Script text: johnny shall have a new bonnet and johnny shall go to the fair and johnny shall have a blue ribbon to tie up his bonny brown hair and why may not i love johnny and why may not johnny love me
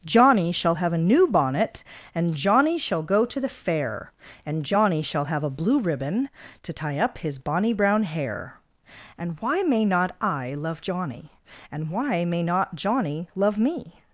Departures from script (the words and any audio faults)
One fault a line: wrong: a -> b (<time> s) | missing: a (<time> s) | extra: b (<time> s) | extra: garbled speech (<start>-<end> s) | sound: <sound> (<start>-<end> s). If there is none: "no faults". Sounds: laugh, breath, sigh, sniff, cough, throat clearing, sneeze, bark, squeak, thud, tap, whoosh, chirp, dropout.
no faults